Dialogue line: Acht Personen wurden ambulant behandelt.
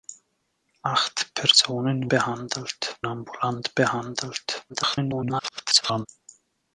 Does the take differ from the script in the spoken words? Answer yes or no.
yes